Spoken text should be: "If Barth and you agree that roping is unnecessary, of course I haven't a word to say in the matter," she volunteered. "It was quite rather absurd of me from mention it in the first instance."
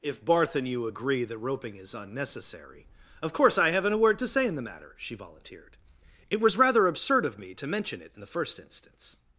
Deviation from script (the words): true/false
true